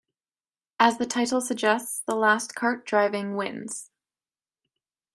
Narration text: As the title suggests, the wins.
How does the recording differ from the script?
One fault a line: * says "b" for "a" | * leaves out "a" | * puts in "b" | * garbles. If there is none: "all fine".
* puts in "last kart driving"